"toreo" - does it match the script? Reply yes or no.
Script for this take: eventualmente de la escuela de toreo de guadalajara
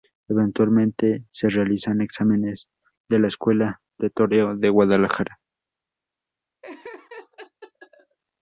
yes